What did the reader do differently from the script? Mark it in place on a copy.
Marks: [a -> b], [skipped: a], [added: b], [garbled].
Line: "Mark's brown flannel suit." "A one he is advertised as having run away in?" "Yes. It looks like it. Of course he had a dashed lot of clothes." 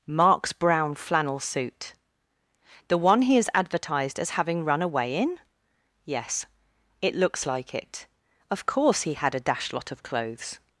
"Mark's brown flannel suit." ["A -> The] one he is advertised as having run away in?" "Yes. It looks like it. Of course he had a dashed lot of clothes."